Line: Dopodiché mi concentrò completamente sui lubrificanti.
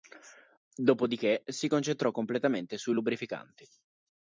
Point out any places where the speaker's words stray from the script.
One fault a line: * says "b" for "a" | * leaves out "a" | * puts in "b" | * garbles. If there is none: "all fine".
* says "si" for "mi"